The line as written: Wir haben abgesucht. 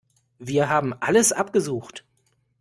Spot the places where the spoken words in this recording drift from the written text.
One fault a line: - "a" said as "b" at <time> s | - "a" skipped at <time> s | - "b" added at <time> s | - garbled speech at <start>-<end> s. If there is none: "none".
- "alles" added at 1.0 s